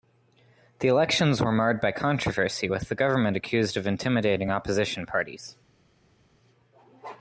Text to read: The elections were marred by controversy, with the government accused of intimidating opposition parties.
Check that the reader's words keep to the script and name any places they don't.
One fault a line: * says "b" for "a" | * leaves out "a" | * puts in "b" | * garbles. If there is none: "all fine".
all fine